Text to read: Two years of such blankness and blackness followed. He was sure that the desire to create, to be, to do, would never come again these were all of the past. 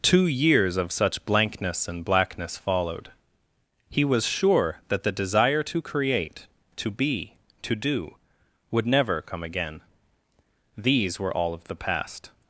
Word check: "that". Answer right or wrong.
right